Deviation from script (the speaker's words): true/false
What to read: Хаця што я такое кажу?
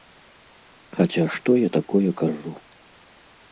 false